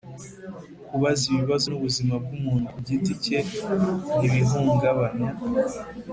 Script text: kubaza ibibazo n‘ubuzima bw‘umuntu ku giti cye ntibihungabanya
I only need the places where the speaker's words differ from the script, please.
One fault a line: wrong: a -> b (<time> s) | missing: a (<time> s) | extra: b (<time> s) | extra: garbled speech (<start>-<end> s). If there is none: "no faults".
no faults